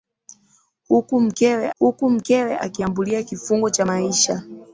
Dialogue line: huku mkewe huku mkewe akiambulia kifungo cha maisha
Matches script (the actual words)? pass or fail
pass